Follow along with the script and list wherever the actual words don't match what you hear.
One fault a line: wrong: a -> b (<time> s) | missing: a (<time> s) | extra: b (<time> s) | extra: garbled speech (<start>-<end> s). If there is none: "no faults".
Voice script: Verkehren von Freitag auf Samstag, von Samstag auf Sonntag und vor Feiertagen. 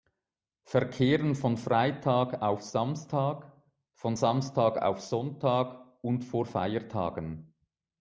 no faults